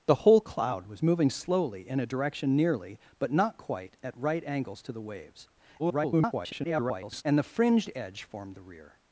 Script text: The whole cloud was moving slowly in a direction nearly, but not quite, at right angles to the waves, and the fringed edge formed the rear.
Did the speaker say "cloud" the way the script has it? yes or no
yes